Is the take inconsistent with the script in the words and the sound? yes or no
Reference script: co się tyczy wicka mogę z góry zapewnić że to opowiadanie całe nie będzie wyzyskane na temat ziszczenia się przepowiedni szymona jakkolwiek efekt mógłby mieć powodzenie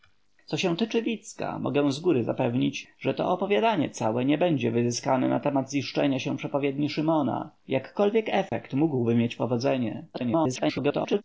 yes